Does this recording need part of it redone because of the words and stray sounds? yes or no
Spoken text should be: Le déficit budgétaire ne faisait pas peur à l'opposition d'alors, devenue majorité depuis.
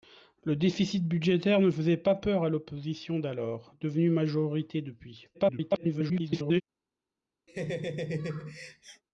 yes